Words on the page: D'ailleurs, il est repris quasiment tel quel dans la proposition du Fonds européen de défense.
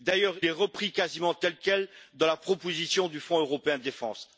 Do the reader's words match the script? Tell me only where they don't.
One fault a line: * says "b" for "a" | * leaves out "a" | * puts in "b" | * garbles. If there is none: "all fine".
* leaves out "il"